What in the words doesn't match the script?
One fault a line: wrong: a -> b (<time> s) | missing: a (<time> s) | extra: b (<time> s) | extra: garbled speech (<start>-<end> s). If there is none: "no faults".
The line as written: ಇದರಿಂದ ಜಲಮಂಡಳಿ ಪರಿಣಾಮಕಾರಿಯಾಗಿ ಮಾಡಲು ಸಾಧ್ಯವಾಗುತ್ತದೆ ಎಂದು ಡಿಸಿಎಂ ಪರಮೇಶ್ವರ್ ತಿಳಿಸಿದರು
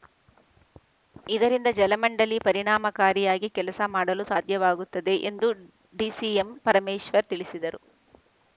extra: ಕೆಲಸ (3.5 s)